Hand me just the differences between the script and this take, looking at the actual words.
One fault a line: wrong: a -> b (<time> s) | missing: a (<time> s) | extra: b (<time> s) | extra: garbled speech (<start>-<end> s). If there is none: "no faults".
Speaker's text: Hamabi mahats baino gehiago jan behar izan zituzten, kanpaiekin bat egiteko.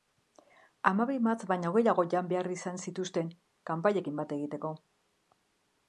no faults